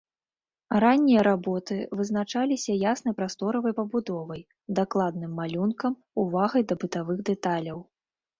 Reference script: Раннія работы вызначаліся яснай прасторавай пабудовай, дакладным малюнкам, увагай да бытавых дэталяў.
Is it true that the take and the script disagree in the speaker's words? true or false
false